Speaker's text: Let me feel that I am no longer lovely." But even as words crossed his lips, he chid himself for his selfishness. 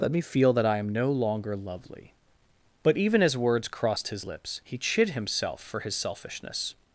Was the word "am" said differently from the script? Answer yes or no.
no